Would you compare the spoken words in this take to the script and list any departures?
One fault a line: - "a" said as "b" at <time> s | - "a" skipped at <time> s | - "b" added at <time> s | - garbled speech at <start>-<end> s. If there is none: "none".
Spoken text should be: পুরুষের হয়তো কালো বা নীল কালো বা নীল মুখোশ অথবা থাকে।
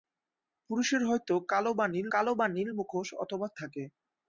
none